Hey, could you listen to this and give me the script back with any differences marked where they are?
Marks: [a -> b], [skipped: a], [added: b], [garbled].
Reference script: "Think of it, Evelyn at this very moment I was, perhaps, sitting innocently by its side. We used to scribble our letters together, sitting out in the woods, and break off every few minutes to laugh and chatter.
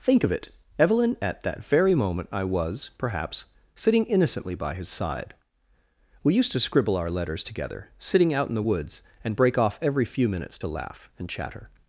"Think of it, Evelyn at [this -> that] very moment I was, perhaps, sitting innocently by [its -> his] side. We used to scribble our letters together, sitting out in the woods, and break off every few minutes to laugh and chatter.